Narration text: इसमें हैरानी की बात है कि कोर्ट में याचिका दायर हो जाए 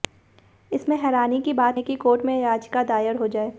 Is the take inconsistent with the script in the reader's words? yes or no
no